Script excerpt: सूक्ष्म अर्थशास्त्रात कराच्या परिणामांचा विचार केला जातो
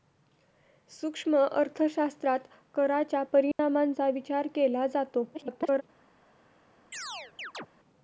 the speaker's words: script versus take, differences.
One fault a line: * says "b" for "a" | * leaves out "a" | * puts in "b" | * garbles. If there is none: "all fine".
* garbles